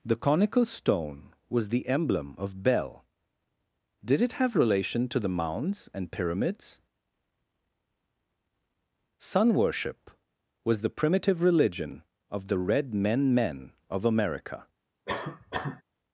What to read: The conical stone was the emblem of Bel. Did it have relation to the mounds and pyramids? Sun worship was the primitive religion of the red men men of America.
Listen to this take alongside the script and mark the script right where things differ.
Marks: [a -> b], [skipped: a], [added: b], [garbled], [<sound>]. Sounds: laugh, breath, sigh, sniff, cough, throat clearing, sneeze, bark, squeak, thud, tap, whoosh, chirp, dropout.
The conical stone was the emblem of Bel. Did it have relation to the mounds and pyramids? Sun worship was the primitive religion of the red men men of America. [cough]